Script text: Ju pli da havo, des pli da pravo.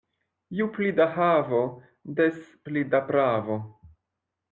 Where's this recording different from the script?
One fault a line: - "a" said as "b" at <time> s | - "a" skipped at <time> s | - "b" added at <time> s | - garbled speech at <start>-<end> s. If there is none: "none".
none